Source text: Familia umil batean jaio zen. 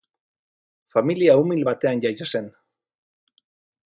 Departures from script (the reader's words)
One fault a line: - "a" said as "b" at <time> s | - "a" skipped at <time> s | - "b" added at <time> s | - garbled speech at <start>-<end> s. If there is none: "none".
none